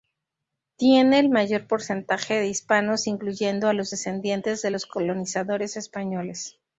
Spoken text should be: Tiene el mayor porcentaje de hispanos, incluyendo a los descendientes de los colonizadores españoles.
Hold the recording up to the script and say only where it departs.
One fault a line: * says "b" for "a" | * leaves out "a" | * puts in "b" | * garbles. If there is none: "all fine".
all fine